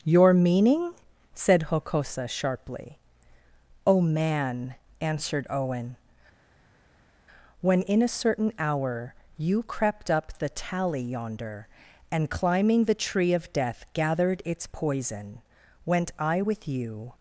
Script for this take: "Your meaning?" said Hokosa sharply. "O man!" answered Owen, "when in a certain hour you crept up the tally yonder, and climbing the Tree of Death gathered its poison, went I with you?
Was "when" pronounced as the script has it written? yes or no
yes